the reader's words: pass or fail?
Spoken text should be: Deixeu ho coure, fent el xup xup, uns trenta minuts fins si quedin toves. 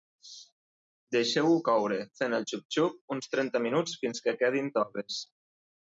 fail